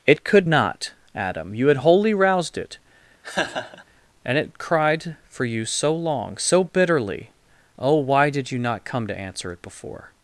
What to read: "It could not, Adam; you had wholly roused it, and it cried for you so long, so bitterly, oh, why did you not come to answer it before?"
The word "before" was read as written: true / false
true